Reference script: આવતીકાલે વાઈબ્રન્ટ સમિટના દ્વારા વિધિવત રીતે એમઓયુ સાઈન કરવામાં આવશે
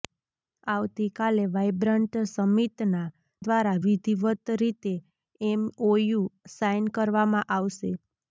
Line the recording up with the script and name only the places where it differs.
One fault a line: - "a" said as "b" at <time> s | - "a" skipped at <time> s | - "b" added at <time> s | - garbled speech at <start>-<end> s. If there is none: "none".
none